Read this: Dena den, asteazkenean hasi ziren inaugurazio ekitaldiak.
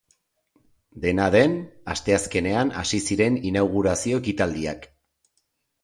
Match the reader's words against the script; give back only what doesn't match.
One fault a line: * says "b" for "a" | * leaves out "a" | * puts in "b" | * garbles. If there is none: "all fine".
all fine